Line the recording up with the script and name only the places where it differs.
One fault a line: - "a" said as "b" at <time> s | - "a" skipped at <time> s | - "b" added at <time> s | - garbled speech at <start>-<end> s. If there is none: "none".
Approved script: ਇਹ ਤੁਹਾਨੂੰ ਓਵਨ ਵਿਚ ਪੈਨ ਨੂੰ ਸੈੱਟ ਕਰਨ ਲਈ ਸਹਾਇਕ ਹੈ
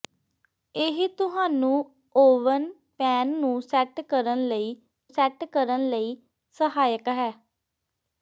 - "ਵਿਚ" skipped at 2.6 s
- "ਸੈੱਟ ਕਰਨ ਲਈ" added at 5.1 s